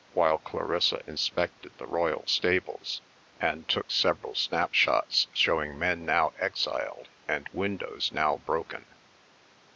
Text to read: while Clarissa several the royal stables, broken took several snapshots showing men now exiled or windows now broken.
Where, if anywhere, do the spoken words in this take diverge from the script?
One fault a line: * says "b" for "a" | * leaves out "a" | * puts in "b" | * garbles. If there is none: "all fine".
* says "inspected" for "several"
* says "and" for "broken"
* says "and" for "or"